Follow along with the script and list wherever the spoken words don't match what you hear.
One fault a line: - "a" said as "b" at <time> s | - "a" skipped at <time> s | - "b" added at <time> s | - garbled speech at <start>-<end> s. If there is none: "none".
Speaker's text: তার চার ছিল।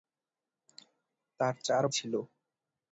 none